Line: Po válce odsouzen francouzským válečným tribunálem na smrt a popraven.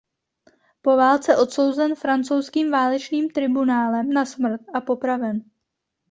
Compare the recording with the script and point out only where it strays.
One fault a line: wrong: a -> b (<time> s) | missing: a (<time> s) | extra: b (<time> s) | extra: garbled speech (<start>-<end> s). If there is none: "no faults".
no faults